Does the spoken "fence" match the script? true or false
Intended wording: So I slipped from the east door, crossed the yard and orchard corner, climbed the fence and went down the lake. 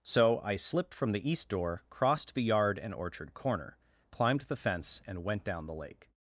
true